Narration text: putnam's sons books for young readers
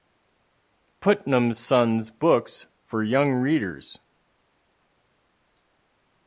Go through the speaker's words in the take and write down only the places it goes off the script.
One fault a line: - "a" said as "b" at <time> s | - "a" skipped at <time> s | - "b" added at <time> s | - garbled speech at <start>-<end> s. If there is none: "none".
none